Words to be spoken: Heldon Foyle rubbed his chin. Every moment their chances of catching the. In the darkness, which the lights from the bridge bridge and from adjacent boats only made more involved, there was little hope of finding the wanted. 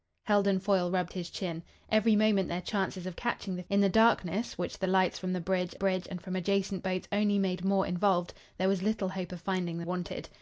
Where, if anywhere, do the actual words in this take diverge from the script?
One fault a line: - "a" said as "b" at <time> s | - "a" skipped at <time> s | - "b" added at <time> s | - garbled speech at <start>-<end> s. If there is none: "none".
none